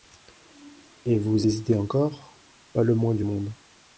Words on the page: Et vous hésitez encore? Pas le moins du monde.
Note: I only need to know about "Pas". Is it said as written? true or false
true